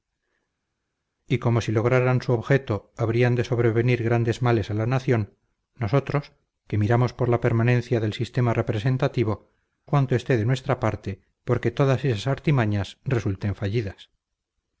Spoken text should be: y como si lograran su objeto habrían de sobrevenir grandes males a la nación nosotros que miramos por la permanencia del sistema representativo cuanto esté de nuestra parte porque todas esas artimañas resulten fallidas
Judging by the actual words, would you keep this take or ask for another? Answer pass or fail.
pass